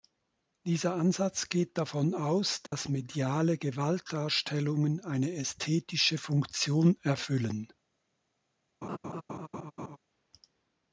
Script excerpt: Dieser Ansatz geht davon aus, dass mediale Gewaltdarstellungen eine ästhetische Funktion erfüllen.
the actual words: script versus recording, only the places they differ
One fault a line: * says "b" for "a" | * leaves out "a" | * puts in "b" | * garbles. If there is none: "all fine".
all fine